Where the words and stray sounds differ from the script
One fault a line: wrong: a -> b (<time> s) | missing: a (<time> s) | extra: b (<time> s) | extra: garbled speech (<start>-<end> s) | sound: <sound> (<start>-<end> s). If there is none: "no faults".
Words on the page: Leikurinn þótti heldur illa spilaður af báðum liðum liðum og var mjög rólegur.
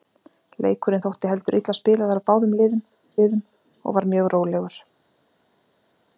no faults